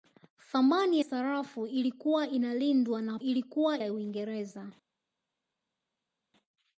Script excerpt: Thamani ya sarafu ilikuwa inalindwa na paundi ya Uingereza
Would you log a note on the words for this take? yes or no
yes